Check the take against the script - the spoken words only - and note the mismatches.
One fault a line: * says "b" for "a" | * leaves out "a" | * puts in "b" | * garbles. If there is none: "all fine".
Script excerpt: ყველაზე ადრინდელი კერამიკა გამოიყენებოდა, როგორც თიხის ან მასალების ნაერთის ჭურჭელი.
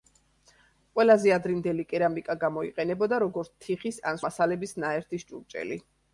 all fine